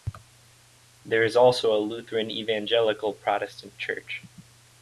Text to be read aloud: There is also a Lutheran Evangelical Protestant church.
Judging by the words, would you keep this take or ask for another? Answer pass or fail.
pass